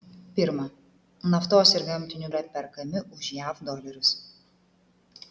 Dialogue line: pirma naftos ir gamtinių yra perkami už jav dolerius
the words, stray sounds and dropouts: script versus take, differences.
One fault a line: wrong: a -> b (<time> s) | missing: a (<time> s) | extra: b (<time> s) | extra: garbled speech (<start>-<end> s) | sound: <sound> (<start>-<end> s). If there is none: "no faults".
no faults